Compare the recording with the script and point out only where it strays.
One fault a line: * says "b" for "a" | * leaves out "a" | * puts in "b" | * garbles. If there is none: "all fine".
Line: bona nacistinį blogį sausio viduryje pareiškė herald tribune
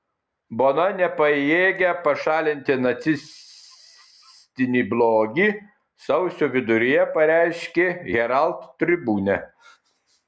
* puts in "nepajėgia pašalinti"